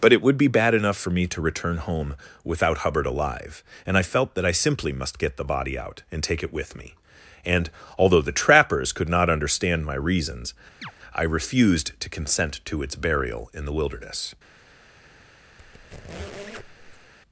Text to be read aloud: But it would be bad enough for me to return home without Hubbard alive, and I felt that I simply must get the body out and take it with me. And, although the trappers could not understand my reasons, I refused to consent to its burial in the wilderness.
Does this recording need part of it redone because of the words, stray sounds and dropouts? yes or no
yes